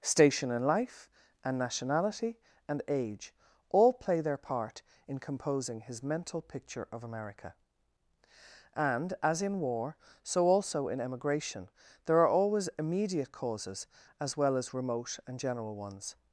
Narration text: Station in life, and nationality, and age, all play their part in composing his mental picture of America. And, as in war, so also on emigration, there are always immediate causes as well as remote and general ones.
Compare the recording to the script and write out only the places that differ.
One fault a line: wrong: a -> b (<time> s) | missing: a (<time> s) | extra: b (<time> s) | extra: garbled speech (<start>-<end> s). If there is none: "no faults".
wrong: on -> in (10.9 s)